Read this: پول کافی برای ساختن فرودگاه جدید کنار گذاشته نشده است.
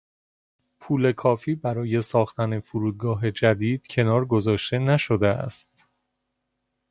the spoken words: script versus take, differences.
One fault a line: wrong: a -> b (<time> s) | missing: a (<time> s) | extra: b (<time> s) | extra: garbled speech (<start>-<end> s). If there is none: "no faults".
no faults